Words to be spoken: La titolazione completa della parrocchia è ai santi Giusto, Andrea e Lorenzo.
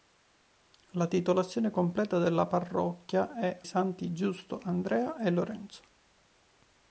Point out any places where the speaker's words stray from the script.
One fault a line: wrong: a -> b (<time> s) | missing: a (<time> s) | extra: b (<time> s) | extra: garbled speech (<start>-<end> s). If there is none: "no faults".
missing: ai (3.6 s)